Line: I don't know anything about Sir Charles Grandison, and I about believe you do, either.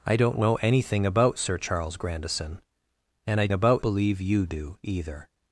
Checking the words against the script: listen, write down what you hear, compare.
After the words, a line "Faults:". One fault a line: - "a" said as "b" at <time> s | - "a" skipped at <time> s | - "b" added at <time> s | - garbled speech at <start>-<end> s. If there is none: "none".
I don't know anything about Sir Charles Grandison, and I about believe you do, either.
Faults:
none